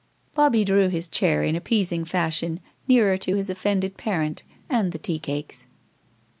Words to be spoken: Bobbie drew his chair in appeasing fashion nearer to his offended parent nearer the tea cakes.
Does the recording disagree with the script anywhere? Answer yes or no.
yes